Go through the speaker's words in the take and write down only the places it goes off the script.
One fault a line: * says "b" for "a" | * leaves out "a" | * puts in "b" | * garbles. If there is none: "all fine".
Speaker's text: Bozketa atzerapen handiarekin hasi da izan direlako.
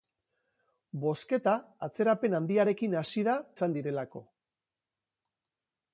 all fine